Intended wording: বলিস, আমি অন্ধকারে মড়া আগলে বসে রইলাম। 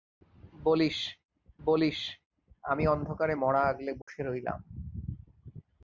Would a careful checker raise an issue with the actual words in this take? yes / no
yes